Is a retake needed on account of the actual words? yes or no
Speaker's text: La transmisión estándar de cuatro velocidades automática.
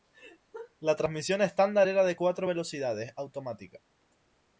yes